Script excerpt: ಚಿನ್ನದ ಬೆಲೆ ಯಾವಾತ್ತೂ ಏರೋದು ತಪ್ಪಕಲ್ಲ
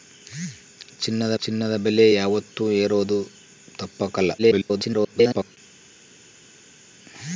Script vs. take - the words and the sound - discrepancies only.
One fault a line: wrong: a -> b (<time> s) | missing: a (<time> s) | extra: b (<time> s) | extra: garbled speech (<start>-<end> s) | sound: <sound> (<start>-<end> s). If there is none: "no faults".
extra: ಚಿನ್ನದ (1.4 s)
extra: garbled speech (4.4-5.6 s)